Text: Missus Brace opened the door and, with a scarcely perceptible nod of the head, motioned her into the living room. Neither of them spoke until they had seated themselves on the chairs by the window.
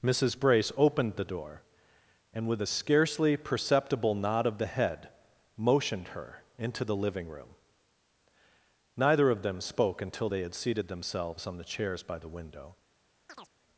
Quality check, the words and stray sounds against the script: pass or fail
fail